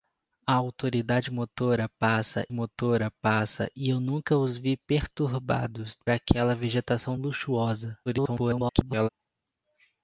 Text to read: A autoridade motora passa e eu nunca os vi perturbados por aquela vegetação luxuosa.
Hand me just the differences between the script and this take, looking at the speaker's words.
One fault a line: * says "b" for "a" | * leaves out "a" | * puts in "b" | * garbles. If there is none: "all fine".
* puts in "motora passa"
* leaves out "por"
* garbles